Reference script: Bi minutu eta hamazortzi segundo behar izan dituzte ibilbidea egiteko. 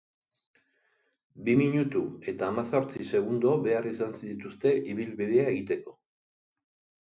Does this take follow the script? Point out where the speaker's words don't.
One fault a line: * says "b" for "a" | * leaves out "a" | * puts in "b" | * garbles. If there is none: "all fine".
all fine